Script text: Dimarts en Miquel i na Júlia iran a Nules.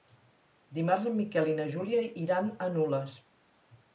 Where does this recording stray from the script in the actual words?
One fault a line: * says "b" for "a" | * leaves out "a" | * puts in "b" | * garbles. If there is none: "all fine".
all fine